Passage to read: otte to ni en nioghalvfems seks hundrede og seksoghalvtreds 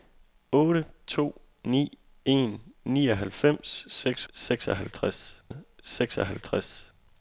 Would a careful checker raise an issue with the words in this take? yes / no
yes